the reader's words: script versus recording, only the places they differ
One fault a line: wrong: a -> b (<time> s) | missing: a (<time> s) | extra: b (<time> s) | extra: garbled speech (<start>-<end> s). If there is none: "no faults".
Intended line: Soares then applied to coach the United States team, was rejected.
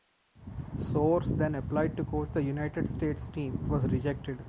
no faults